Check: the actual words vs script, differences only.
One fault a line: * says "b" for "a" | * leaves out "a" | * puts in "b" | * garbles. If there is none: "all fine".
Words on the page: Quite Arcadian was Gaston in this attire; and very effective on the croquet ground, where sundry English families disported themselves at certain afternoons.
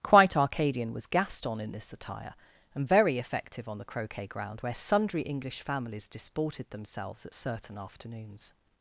all fine